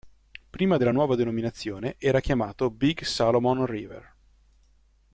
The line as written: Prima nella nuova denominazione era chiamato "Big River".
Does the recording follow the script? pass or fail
fail